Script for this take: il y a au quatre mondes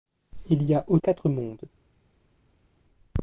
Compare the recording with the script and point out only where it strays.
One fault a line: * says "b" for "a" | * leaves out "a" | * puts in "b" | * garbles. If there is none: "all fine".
all fine